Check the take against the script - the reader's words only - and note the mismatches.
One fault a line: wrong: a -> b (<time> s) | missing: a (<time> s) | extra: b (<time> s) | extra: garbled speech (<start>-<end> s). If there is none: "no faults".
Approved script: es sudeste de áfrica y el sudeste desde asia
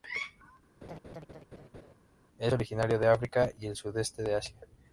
wrong: sudeste -> originario (2.5 s)
wrong: desde -> de (4.2 s)